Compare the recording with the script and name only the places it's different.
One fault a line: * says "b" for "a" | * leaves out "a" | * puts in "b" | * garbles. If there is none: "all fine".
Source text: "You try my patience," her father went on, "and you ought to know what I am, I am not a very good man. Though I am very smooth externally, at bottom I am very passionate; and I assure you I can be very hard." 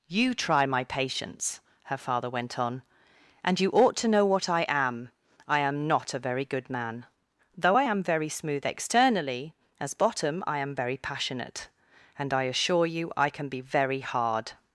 * says "as" for "at"